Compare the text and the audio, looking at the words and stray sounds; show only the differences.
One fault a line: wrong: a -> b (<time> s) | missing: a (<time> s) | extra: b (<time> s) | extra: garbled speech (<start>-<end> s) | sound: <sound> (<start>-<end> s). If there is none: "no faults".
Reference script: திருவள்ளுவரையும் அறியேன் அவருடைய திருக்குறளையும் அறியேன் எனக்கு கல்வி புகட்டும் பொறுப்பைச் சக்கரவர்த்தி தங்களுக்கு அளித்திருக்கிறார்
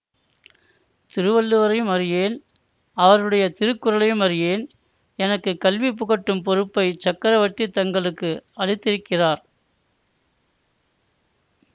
no faults